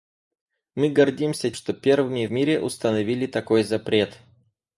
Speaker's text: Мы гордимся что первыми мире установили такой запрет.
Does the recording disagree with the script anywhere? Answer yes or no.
no